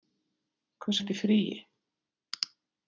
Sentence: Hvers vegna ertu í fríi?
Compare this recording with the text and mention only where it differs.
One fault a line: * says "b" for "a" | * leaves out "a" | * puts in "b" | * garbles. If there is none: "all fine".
* leaves out "vegna"